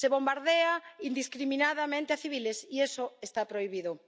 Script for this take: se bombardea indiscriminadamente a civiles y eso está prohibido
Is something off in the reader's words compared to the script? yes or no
no